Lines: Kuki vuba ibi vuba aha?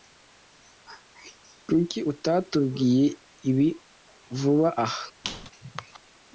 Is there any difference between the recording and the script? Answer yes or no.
yes